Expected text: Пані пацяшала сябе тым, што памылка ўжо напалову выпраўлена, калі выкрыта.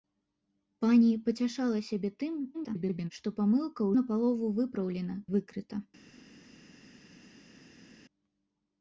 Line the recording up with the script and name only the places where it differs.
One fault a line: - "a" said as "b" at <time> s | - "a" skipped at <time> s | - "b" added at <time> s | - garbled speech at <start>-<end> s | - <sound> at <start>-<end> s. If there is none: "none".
- garbled speech at 2.5-3.1 s
- "ўжо" skipped at 3.9 s
- "калі" skipped at 5.2 s